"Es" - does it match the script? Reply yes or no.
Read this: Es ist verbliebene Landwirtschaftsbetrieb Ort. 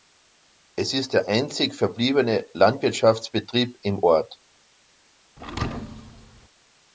yes